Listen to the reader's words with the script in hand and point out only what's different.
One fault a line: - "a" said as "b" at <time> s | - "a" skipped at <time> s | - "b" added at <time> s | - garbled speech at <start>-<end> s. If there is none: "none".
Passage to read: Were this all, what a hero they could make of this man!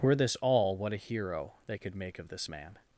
none